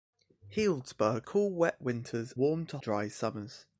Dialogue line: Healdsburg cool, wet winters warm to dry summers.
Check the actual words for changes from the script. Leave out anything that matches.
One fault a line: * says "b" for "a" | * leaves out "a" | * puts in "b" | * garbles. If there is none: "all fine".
all fine